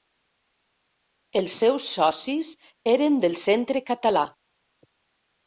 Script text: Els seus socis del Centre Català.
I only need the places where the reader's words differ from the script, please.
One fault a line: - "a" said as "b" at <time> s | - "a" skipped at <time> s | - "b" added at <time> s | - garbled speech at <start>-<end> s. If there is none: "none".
- "eren" added at 2.9 s